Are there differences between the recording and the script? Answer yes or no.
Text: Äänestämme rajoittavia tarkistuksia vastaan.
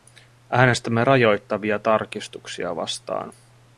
no